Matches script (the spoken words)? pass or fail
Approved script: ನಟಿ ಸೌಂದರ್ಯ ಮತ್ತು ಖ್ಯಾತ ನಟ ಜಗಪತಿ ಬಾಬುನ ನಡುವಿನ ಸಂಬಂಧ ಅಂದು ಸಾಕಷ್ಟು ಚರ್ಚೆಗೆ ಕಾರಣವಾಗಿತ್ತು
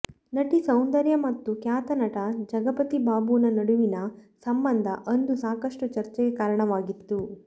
pass